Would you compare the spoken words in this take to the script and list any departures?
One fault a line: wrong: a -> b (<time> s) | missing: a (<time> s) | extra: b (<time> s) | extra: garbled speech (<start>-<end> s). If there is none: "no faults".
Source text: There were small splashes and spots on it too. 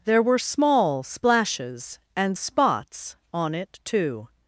no faults